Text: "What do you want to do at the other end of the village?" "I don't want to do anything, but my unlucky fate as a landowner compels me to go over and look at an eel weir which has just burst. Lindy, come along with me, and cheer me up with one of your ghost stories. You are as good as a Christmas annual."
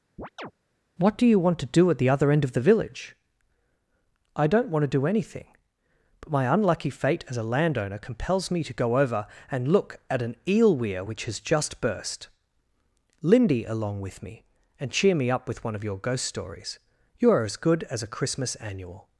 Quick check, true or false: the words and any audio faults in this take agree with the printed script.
false